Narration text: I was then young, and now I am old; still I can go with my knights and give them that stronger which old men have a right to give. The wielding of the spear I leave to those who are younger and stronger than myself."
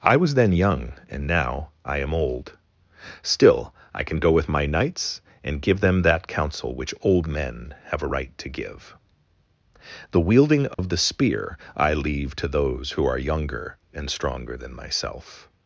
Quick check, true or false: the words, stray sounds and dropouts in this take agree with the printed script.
false